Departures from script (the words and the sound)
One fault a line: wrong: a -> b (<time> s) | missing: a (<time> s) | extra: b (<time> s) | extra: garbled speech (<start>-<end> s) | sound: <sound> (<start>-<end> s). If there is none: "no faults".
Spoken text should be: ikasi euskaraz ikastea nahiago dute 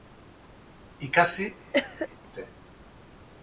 missing: euskaraz ikastea nahiago (1.5 s)
sound: cough (1.7-2.1 s)